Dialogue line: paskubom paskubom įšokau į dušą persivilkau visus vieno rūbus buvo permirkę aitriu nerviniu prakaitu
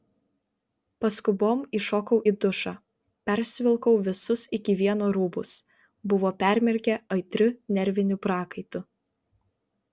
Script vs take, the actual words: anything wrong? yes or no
yes